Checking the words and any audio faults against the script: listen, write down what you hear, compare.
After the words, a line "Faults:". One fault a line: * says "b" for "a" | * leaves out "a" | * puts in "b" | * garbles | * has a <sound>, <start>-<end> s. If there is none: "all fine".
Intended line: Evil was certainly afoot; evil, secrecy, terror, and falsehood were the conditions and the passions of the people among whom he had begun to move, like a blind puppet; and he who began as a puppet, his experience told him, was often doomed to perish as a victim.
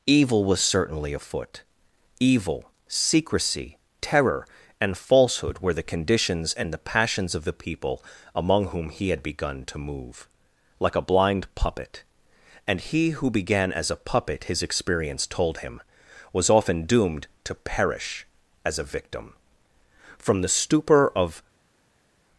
Evil was certainly afoot; evil, secrecy, terror, and falsehood were the conditions and the passions of the people among whom he had begun to move, like a blind puppet; and he who began as a puppet, his experience told him, was often doomed to perish as a victim. From the stupor of
Faults:
* puts in "From the stupor of"